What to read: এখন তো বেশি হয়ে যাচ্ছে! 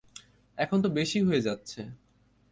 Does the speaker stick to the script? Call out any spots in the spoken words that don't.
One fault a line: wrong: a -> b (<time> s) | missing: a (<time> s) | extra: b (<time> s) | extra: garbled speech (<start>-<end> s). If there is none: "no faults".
no faults